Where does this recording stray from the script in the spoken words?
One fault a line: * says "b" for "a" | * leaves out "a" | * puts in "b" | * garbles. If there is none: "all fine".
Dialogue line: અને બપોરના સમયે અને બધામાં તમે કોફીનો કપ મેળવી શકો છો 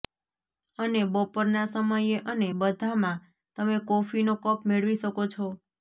all fine